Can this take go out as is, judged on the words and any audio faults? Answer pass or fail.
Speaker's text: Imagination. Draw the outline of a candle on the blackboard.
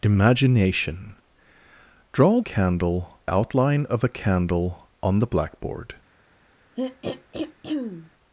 fail